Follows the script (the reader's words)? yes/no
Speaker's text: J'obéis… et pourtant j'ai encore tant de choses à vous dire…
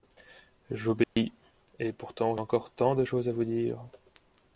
no